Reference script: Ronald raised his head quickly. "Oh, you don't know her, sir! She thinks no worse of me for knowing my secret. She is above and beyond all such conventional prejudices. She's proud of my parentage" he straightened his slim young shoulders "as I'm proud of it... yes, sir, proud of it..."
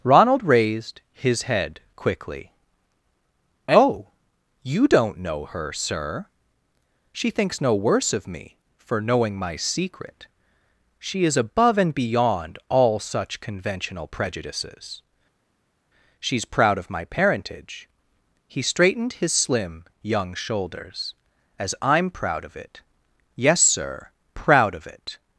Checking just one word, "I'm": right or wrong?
right